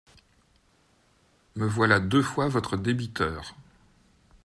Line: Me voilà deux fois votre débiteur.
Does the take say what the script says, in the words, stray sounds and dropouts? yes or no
yes